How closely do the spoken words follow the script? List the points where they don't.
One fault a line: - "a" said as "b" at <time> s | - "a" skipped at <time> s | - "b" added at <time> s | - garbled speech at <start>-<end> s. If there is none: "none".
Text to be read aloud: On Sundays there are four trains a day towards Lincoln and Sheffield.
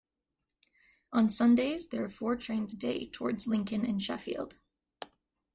none